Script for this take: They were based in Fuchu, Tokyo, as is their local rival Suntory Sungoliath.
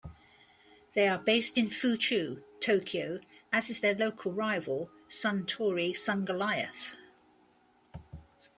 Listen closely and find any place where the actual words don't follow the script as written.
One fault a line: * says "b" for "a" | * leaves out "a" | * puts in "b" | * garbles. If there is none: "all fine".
* says "are" for "were"